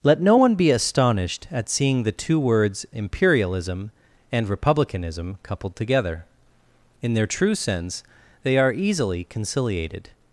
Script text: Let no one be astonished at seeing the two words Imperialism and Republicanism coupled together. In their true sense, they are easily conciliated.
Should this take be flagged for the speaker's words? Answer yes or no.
no